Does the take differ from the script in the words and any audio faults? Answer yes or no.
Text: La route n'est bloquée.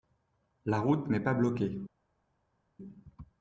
yes